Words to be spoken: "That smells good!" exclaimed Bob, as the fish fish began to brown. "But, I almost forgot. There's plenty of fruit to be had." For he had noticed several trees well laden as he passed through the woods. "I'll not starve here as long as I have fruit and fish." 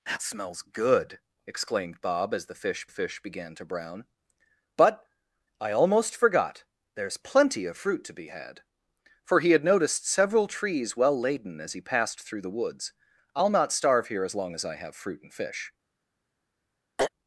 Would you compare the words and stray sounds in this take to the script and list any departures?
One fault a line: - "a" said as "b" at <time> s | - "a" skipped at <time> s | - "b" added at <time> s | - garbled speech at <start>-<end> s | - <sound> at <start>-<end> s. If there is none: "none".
- throat clearing at 17.0-17.1 s